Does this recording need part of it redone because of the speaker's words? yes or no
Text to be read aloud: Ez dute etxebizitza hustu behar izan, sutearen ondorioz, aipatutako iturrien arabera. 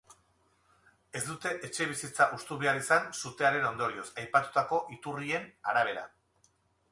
no